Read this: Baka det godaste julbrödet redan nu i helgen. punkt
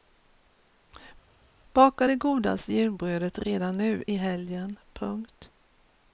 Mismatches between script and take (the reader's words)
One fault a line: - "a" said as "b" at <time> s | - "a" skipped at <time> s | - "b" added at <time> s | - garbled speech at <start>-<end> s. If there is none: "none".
none